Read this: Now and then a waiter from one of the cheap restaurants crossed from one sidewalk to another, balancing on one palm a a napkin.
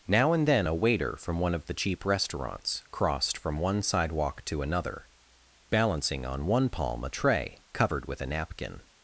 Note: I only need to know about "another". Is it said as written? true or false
true